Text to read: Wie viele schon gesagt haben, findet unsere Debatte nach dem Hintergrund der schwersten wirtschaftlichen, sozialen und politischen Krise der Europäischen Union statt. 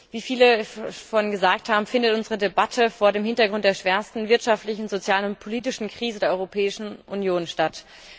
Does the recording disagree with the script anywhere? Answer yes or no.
yes